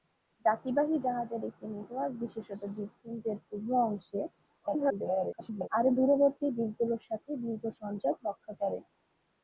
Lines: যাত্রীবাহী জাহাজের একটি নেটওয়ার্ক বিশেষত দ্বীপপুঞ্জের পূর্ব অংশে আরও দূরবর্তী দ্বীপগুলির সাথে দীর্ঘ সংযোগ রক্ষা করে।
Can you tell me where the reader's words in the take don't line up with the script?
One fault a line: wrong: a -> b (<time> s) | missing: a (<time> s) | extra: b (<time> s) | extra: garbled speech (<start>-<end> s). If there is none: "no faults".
extra: garbled speech (4.6-5.7 s)